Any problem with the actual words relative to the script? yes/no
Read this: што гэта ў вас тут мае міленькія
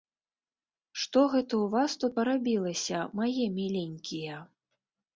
yes